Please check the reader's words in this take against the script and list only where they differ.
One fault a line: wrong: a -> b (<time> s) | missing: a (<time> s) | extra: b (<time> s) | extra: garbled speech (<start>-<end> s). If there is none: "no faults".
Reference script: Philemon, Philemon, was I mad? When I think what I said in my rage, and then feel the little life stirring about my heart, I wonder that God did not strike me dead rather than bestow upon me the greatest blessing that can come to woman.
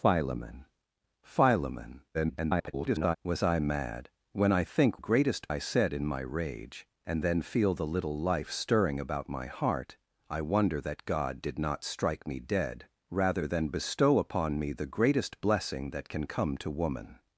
extra: garbled speech (2.1-3.2 s)
wrong: what -> greatest (5.0 s)